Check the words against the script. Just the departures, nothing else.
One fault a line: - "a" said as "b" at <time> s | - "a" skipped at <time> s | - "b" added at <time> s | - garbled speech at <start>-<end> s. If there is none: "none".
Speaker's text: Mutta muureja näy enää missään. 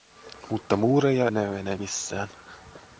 none